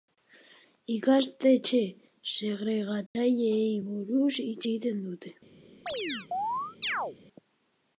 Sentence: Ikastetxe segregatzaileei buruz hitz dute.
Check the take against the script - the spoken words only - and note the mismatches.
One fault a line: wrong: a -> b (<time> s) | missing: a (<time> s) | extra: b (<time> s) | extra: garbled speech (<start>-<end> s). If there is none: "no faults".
extra: egiten (4.7 s)